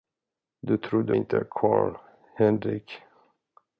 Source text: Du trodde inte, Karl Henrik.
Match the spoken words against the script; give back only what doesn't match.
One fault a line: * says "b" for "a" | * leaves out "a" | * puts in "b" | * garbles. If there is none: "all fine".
all fine